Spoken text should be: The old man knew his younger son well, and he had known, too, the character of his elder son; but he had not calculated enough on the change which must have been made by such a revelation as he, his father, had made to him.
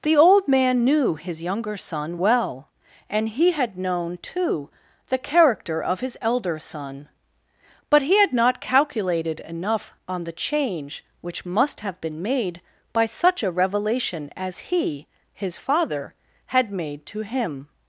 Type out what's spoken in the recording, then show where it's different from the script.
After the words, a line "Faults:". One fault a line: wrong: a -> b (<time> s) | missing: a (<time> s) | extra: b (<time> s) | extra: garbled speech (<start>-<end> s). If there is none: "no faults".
The old man knew his younger son well, and he had known, too, the character of his elder son; but he had not calculated enough on the change which must have been made by such a revelation as he, his father, had made to him.
Faults:
no faults